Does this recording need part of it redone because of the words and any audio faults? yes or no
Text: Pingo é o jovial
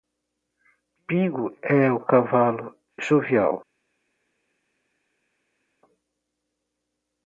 yes